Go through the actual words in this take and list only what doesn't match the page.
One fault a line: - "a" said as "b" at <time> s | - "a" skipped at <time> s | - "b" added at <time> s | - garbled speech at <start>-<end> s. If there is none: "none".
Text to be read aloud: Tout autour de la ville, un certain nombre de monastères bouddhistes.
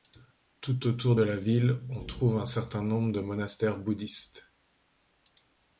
- "on trouve" added at 1.9 s